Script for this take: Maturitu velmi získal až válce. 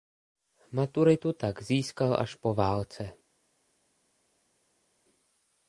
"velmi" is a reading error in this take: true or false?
true